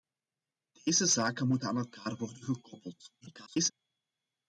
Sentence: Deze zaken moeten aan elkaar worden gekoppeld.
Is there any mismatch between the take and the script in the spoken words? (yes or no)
yes